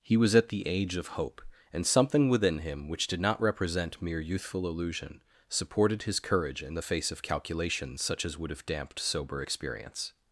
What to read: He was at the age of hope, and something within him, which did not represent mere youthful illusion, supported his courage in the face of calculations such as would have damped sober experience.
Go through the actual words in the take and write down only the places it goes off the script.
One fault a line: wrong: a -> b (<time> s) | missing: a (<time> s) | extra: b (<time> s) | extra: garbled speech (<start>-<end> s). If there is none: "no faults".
no faults